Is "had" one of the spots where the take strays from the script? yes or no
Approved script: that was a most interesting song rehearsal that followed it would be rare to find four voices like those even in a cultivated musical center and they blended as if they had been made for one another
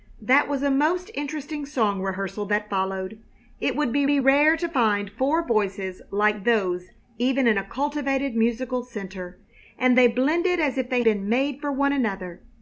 yes